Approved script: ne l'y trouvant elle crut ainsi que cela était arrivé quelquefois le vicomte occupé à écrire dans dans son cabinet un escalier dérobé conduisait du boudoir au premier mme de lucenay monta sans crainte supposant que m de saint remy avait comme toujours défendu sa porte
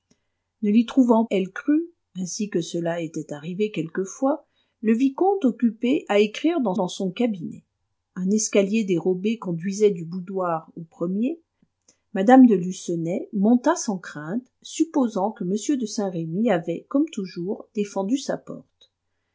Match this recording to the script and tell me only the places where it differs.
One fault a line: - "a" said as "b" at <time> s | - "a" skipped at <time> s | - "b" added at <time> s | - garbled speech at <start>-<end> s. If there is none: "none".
none